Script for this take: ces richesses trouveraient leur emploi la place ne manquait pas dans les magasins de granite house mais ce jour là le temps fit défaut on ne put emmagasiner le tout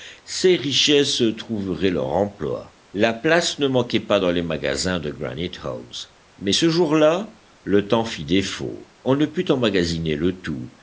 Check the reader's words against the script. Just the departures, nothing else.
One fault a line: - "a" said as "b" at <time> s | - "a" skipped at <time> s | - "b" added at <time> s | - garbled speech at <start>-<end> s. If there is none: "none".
none